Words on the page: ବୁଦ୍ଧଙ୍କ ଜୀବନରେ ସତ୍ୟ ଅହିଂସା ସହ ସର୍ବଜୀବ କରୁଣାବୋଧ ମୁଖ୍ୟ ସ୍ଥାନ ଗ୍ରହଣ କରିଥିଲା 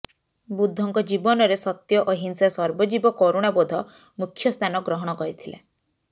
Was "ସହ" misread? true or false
true